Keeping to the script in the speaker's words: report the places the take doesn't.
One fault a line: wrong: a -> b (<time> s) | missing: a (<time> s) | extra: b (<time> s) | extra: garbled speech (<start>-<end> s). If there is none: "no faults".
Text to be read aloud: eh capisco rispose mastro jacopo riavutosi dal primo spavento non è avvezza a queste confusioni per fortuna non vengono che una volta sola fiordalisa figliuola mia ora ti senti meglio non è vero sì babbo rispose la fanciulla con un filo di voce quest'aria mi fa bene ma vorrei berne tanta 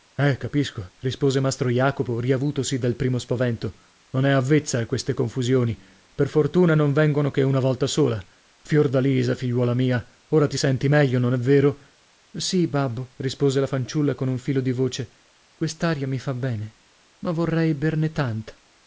no faults